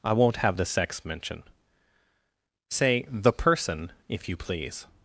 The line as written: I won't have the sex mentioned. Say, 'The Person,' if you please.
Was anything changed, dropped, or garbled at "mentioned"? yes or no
yes